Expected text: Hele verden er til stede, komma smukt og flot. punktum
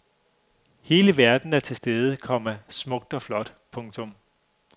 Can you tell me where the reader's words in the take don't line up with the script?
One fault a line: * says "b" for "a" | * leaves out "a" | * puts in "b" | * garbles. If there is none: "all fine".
all fine